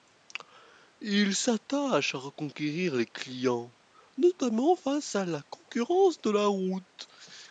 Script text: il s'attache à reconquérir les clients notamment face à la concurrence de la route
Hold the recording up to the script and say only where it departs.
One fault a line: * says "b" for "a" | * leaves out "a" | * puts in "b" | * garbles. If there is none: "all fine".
all fine